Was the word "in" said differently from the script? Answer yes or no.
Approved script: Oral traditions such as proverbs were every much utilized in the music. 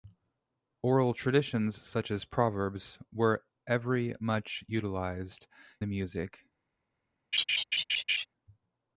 yes